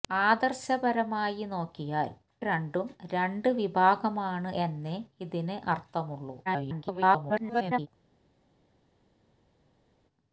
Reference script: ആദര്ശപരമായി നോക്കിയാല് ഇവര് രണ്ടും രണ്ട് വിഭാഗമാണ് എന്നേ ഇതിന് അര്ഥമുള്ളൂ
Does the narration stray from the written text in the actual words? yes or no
yes